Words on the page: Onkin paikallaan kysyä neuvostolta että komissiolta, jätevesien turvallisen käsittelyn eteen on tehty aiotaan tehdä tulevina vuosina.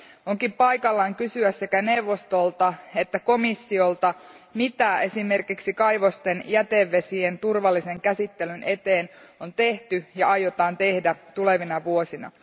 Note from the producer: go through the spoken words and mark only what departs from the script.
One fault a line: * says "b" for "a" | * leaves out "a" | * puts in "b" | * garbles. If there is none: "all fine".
* puts in "sekä"
* puts in "mitä esimerkiksi kaivosten"
* puts in "ja"